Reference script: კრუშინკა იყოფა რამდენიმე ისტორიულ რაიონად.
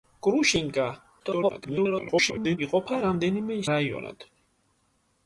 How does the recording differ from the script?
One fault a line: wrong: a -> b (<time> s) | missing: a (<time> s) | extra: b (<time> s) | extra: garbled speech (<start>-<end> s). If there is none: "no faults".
extra: garbled speech (1.2-2.6 s)
missing: ისტორიულ (3.6 s)